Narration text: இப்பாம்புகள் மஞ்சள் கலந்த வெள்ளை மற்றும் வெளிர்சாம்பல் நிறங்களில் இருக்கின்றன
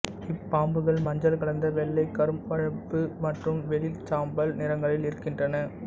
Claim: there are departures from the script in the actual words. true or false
true